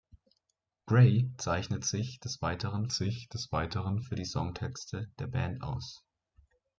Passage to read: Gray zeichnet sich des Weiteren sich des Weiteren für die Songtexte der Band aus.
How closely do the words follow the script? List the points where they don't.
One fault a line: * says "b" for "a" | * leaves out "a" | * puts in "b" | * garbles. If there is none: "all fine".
all fine